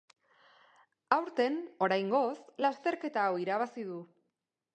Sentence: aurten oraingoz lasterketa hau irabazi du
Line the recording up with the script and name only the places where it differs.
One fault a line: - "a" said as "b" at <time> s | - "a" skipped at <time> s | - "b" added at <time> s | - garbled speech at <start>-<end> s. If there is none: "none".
none